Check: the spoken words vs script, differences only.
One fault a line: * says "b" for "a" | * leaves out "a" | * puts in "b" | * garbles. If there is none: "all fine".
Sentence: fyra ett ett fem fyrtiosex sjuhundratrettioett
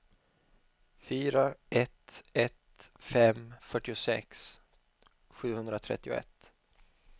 all fine